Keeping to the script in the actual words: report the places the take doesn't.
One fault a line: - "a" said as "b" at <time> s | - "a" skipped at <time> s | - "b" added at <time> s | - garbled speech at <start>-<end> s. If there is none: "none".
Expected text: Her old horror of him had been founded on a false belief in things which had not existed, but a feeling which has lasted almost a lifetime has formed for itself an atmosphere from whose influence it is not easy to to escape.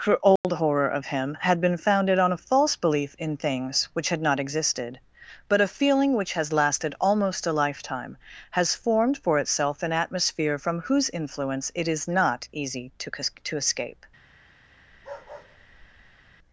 none